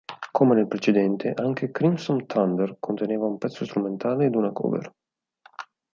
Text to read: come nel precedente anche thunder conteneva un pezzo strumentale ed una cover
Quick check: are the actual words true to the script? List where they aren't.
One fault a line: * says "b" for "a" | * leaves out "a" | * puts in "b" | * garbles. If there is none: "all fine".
* puts in "crimson"